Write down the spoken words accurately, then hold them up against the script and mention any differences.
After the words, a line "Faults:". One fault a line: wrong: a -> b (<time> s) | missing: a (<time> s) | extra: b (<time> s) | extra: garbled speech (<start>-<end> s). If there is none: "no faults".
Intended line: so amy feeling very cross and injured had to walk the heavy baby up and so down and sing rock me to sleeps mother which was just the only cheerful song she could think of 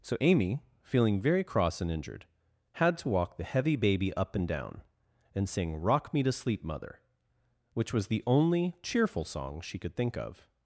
so amy feeling very cross and injured had to walk the heavy baby up and down and sing rock me to sleep mother which was the only cheerful song she could think of
Faults:
missing: so (4.5 s)
wrong: sleeps -> sleep (6.3 s)
missing: just (8.1 s)